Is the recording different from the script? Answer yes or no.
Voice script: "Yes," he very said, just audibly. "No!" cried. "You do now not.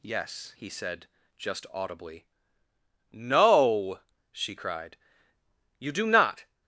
yes